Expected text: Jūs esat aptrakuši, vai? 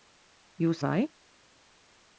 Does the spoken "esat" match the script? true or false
false